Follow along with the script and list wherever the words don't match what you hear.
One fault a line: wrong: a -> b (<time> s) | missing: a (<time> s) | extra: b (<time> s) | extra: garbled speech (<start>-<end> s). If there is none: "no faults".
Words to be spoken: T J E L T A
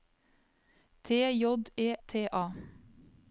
missing: L (1.9 s)